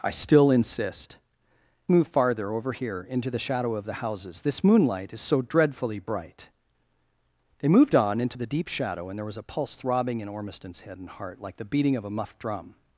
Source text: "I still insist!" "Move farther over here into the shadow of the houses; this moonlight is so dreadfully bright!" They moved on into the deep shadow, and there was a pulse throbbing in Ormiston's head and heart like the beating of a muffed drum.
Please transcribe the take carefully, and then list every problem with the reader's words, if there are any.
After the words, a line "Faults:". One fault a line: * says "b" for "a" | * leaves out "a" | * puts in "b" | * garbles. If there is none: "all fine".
"I still insist!" "Move farther over here into the shadow of the houses; this moonlight is so dreadfully bright!" They moved on into the deep shadow, and there was a pulse throbbing in Ormiston's head and heart like the beating of a muffed drum.
Faults:
all fine